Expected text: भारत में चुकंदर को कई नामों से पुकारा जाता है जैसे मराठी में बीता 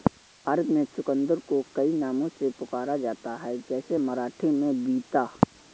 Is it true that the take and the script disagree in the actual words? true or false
false